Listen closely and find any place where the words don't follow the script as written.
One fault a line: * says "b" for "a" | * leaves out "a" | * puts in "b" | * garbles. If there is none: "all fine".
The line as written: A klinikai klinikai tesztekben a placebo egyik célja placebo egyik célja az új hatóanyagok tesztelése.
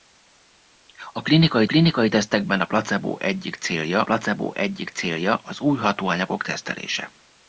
all fine